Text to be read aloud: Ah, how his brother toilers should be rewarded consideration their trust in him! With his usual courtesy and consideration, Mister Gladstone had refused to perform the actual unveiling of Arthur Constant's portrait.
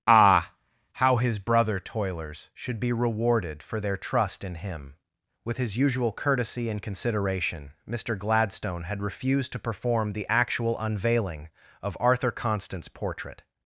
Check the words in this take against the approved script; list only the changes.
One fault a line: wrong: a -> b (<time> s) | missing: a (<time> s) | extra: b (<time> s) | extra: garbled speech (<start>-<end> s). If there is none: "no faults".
wrong: consideration -> for (3.6 s)